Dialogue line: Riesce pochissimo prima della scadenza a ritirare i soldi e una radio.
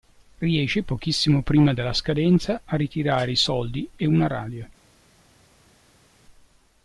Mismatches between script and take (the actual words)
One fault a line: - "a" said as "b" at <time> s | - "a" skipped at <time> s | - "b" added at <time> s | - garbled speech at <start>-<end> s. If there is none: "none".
none